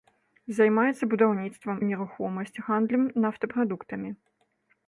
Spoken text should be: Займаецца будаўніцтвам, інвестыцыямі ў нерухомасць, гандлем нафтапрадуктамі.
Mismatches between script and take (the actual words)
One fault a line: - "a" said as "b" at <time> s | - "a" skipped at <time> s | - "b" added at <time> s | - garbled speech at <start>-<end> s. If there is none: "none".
- "інвестыцыямі" skipped at 1.8 s